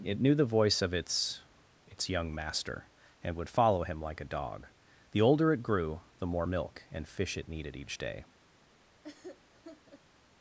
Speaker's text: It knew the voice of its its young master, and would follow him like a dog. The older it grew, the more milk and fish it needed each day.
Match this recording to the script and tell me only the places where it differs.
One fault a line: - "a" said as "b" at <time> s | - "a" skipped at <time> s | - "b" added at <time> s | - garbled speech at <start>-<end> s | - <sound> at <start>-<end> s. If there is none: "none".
- laugh at 9.0-10.0 s